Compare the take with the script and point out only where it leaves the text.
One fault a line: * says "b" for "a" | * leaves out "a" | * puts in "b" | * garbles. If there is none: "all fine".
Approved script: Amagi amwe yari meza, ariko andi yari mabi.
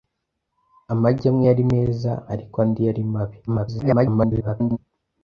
* garbles